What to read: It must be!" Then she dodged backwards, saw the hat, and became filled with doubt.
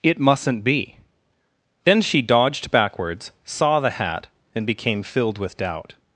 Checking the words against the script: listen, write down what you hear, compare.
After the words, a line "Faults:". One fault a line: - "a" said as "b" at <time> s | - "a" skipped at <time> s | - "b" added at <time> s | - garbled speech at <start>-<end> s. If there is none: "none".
It mustn't be!" Then she dodged backwards, saw the hat, and became filled with doubt.
Faults:
- "must" said as "mustn't" at 0.2 s